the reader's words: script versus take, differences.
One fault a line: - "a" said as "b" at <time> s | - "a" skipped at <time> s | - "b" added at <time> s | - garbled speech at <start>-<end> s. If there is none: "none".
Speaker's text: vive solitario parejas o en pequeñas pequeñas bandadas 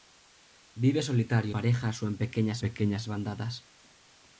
none